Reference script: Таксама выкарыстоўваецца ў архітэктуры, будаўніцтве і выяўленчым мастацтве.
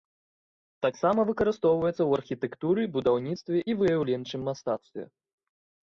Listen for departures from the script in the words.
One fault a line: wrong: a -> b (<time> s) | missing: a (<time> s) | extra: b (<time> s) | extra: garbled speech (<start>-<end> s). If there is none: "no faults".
no faults